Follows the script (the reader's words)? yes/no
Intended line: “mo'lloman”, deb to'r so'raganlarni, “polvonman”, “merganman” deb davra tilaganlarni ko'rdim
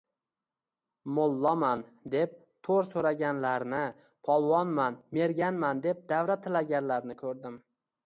yes